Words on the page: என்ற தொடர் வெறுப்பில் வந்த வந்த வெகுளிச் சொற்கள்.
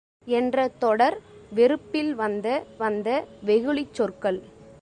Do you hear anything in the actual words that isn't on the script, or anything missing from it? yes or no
no